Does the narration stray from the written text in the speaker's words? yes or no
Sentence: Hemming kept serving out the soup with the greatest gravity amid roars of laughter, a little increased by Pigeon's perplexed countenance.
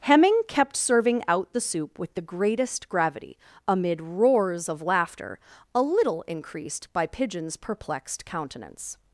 no